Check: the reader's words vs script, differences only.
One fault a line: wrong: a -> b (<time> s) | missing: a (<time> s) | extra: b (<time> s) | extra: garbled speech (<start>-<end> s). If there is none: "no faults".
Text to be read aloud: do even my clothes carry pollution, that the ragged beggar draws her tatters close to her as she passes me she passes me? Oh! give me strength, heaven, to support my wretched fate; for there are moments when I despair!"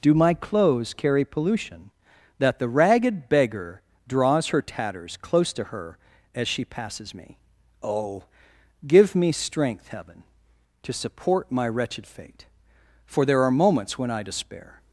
missing: even (0.1 s)
missing: she passes me (7.4 s)